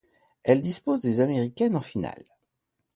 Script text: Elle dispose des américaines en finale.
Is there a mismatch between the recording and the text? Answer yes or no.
no